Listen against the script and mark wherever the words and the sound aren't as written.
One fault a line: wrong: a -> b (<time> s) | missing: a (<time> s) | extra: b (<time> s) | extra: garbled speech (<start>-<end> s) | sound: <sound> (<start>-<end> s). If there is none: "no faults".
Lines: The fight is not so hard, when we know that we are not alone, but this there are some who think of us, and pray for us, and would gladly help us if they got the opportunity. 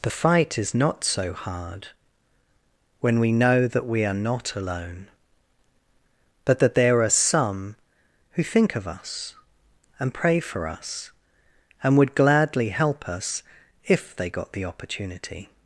wrong: this -> that (6.6 s)